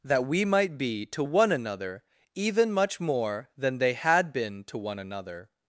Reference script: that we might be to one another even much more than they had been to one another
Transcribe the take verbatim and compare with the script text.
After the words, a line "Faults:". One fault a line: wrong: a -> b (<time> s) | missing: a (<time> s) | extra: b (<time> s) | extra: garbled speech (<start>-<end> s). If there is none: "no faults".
that we might be to one another even much more than they had been to one another
Faults:
no faults